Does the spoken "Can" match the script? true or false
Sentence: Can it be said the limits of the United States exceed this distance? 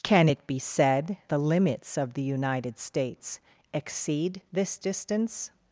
true